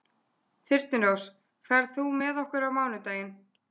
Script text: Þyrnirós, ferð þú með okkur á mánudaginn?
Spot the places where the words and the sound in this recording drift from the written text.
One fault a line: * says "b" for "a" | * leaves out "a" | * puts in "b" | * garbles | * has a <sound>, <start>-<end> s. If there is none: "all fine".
all fine